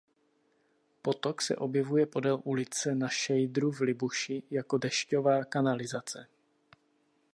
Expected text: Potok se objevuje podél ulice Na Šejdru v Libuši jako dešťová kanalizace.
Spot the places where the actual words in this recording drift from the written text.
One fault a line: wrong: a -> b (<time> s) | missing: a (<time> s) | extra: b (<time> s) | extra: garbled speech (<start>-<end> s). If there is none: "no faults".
no faults